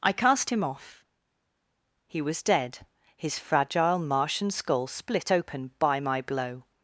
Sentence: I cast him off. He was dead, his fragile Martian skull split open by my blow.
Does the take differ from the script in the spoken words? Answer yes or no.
no